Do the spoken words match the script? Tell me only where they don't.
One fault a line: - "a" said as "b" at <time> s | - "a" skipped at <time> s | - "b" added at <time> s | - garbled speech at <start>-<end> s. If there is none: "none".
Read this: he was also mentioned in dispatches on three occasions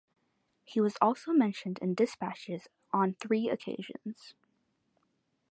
none